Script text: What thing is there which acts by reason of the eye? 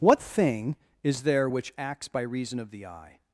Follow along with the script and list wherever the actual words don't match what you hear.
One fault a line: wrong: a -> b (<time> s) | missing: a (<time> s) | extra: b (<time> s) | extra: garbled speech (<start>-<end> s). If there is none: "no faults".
no faults